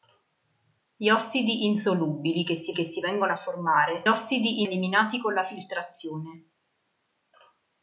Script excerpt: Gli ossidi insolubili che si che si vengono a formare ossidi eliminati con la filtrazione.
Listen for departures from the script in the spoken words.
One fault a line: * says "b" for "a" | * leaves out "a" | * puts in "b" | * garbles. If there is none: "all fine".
all fine